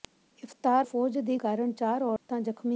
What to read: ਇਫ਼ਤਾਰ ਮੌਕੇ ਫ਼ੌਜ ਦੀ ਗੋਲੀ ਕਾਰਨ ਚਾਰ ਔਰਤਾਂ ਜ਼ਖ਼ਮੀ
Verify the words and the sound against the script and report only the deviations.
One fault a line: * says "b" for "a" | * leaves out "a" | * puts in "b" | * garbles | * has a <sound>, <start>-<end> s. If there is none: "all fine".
* leaves out "ਮੌਕੇ"
* leaves out "ਗੋਲੀ"
* has a dropout, 2.2-2.3 s